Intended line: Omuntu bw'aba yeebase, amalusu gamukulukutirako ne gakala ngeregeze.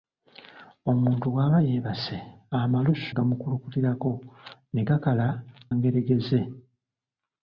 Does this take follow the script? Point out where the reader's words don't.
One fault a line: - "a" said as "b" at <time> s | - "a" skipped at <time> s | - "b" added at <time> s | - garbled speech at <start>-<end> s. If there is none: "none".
none